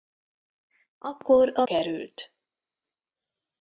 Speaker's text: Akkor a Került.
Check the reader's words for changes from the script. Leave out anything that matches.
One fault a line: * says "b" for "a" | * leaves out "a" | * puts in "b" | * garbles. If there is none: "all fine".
all fine